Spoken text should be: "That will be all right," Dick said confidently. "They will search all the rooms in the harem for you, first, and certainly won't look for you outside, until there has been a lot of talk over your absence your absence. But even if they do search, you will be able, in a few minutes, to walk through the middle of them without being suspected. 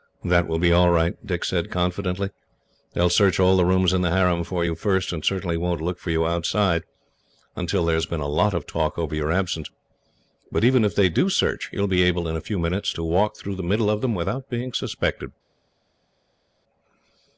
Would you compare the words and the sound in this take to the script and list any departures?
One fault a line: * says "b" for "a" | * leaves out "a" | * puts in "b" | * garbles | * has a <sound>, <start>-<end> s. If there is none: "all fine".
* leaves out "your absence"